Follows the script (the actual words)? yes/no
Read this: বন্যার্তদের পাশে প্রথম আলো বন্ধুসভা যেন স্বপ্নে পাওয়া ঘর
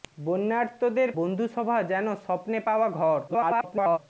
no